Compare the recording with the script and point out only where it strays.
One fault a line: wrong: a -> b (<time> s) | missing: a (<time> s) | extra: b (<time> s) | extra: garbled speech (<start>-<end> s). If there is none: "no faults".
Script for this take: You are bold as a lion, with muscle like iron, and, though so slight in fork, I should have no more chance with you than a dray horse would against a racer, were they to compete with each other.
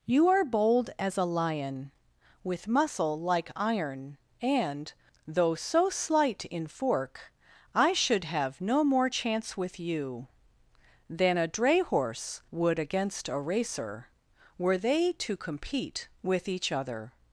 no faults